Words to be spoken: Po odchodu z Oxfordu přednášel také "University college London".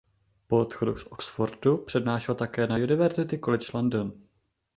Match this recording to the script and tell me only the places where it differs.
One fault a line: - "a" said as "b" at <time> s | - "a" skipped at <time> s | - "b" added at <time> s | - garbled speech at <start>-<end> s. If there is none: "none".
- "na" added at 2.7 s